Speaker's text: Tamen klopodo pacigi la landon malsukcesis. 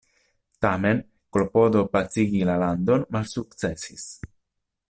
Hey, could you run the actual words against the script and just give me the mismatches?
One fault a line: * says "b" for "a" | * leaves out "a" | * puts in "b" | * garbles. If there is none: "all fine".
all fine